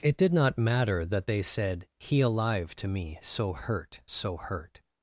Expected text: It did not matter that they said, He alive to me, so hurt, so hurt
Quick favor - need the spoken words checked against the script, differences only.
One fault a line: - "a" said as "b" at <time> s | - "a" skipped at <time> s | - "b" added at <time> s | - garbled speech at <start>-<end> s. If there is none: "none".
none